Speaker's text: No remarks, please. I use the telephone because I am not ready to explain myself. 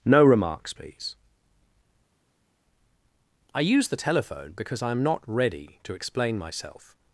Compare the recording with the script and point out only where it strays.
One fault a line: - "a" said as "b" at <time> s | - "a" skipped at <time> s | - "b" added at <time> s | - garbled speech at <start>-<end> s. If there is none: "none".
none